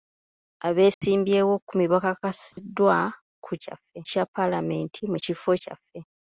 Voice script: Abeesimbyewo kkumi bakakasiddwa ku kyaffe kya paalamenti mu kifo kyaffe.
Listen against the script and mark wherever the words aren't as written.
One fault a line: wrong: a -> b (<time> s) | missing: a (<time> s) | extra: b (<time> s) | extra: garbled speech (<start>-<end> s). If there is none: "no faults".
no faults